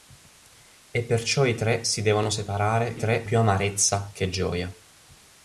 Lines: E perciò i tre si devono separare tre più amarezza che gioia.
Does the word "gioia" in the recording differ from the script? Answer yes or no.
no